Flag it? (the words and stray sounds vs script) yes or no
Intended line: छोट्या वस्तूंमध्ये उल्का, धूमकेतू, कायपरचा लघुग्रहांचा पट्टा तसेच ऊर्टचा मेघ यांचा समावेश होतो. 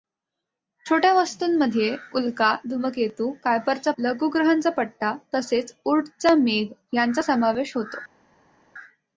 no